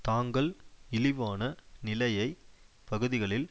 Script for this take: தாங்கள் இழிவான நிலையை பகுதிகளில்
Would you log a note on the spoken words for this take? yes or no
no